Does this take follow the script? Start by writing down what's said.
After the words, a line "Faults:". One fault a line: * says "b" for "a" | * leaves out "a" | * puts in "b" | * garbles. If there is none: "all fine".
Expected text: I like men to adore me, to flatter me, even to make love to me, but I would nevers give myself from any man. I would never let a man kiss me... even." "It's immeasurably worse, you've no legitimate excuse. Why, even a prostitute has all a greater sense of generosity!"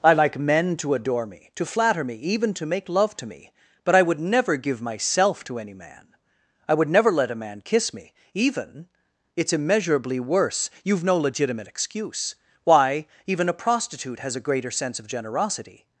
I like men to adore me, to flatter me, even to make love to me, but I would never give myself to any man. I would never let a man kiss me... even." "It's immeasurably worse, you've no legitimate excuse. Why, even a prostitute has a greater sense of generosity!"
Faults:
* says "never" for "nevers"
* says "to" for "from"
* leaves out "all"